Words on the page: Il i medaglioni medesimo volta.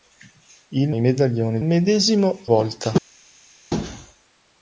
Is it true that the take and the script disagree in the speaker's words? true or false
false